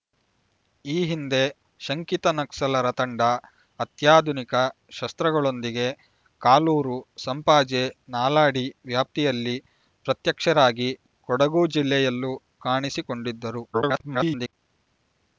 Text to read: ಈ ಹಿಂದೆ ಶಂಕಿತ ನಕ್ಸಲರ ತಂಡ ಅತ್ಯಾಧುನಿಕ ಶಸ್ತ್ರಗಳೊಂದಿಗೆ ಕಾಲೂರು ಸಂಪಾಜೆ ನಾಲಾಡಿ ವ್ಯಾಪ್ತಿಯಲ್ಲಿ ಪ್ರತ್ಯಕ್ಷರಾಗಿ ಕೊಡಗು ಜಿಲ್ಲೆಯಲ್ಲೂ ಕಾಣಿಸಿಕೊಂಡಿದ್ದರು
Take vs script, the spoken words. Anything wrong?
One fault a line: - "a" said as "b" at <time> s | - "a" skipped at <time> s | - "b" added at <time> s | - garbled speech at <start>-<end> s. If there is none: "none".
- garbled speech at 13.7-14.5 s